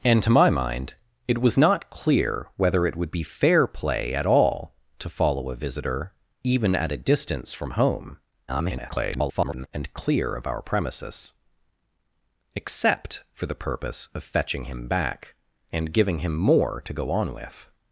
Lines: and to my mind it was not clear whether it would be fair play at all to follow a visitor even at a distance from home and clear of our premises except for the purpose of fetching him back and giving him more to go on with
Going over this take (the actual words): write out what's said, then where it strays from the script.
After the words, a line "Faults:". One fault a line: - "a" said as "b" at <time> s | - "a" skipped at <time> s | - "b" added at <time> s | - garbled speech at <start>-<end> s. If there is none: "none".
and to my mind it was not clear whether it would be fair play at all to follow a visitor even at a distance from home [garbled] and clear of our premises except for the purpose of fetching him back and giving him more to go on with
Faults:
- garbled speech at 8.5-9.7 s